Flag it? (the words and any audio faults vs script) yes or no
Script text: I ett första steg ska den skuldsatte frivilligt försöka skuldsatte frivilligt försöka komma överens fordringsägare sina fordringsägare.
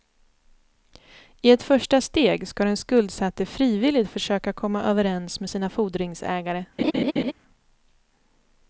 yes